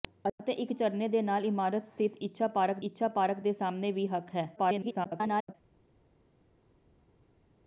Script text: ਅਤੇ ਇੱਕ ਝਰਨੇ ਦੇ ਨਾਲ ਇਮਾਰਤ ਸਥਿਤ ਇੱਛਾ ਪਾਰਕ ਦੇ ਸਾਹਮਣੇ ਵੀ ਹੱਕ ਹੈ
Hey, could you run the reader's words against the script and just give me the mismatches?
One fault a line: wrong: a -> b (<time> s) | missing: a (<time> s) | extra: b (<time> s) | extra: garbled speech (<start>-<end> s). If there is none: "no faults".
extra: ਇੱਛਾ ਪਾਰਕ (2.8 s)
extra: garbled speech (4.6-5.5 s)